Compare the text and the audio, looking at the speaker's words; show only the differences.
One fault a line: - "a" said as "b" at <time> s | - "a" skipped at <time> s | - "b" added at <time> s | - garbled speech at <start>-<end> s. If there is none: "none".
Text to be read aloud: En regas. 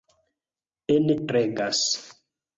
none